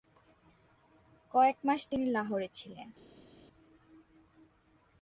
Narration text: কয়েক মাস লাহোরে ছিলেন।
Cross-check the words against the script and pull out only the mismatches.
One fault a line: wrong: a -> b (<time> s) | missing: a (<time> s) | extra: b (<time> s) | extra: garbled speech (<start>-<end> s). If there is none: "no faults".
extra: তিনি (1.9 s)